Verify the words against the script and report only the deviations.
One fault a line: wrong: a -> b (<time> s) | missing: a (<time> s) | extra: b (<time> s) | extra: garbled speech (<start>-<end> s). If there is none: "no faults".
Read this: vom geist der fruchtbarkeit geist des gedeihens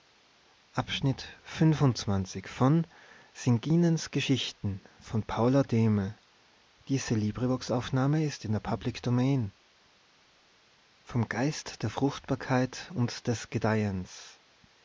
wrong: geist -> und (12.9 s)